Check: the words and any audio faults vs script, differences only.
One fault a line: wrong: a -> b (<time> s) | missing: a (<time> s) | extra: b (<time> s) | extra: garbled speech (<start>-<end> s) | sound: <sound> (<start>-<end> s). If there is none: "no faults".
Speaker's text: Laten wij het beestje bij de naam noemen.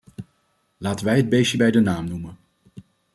no faults